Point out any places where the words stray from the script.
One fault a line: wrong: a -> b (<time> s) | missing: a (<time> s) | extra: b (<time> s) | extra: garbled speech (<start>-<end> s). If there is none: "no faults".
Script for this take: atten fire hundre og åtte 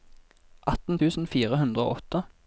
extra: tusen (1.0 s)